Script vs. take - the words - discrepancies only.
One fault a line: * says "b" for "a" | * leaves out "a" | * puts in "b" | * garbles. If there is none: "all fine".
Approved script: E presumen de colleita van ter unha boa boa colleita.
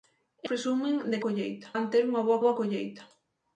all fine